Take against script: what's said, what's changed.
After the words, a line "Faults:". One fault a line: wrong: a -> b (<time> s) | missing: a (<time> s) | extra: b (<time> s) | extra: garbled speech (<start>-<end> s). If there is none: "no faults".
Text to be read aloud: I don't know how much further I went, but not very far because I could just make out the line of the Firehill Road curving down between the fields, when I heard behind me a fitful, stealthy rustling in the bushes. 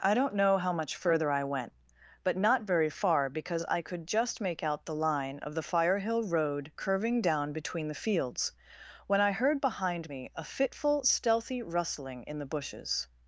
I don't know how much further I went, but not very far because I could just make out the line of the Firehill Road curving down between the fields, when I heard behind me a fitful, stealthy rustling in the bushes.
Faults:
no faults